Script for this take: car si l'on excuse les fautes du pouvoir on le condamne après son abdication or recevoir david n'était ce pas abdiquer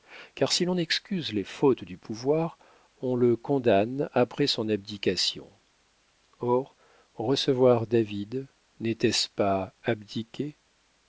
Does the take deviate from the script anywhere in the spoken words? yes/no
no